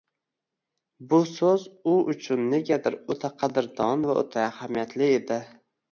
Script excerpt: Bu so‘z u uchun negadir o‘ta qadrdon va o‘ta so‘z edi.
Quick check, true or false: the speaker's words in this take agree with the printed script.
false